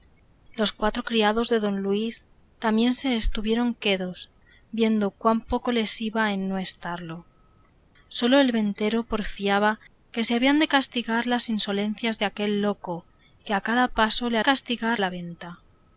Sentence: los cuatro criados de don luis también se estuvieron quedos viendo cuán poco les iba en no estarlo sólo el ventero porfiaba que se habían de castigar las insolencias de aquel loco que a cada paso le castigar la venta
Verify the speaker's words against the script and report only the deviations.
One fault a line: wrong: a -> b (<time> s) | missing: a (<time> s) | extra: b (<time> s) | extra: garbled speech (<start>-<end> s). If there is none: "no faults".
no faults